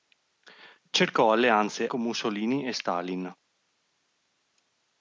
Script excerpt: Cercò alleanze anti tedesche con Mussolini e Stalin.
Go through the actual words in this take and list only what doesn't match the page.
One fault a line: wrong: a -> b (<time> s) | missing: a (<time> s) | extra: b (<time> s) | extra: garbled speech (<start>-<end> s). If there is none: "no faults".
missing: anti tedesche (1.9 s)